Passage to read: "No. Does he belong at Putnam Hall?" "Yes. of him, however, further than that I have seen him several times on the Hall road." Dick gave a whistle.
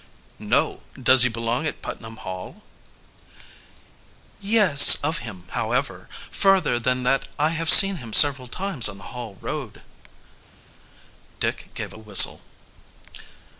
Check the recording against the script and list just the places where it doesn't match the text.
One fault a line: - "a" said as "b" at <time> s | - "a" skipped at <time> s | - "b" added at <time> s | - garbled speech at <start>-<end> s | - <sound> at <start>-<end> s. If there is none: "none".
none